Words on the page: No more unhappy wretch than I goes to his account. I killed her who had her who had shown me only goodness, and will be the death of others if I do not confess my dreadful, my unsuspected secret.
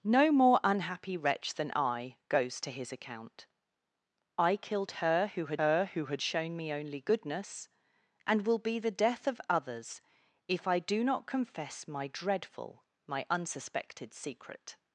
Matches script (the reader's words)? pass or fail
pass